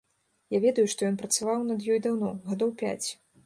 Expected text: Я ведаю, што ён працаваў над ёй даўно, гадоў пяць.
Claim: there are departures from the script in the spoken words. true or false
false